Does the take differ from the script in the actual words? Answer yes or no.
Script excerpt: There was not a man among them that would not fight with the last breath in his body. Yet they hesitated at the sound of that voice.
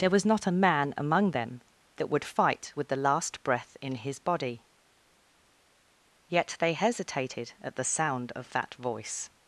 yes